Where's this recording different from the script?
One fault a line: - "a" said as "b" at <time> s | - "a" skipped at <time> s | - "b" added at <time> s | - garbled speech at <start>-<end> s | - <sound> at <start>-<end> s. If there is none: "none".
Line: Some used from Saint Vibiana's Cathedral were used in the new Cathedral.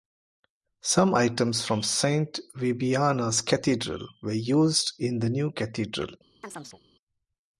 - "used" said as "items" at 1.1 s
- chirp at 6.4-6.8 s